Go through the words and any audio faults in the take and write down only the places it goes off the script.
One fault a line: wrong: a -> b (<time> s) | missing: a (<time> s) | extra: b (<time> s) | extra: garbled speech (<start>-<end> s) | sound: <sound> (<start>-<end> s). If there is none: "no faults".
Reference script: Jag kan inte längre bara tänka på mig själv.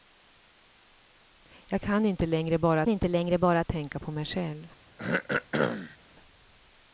extra: inte längre bara (2.9 s)
sound: throat clearing (5.0-6.0 s)